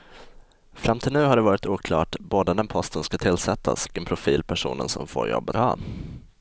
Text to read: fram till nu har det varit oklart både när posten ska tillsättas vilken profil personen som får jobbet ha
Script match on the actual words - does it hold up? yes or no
yes